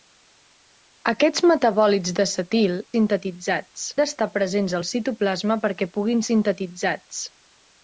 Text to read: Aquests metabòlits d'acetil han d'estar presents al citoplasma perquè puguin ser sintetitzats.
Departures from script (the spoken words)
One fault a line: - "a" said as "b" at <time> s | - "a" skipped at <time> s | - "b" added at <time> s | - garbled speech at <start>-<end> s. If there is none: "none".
- "han" said as "sintetitzats" at 3.0 s
- "ser" skipped at 6.3 s